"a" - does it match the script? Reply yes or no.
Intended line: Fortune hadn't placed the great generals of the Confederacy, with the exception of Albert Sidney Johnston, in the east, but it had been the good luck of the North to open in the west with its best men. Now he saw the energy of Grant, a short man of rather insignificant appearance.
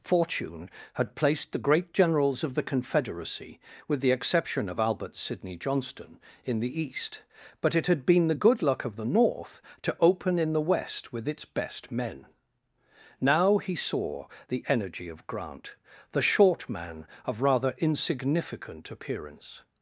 no